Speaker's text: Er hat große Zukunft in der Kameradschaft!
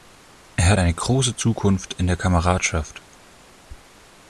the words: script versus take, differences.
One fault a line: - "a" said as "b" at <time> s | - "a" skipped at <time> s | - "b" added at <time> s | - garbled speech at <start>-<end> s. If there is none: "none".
- "eine" added at 0.8 s